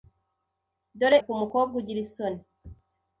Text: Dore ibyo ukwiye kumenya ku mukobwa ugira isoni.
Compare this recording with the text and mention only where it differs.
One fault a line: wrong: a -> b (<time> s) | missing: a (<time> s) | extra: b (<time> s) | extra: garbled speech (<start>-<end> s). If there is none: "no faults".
missing: ibyo ukwiye kumenya (1.2 s)